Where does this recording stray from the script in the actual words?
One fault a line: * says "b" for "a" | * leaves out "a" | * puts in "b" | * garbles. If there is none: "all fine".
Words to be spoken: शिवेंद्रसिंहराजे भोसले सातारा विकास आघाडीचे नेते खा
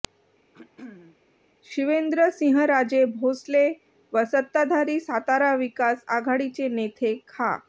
* puts in "व सत्ताधारी"